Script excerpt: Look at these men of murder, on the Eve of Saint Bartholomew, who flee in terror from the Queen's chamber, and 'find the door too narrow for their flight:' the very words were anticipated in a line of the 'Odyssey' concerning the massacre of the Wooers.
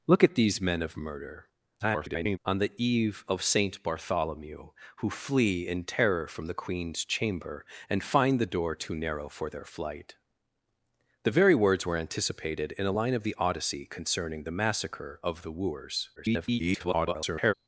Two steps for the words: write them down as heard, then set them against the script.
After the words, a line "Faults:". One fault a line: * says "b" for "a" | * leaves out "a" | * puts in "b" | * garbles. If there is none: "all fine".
Look at these men of murder, [garbled] on the Eve of Saint Bartholomew, who flee in terror from the Queen's chamber, and 'find the door too narrow for their flight:' the very words were anticipated in a line of the 'Odyssey' concerning the massacre of the Wooers. [garbled]
Faults:
* garbles
* garbles